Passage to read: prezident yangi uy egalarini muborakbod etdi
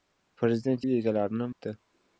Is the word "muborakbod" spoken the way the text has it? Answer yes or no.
no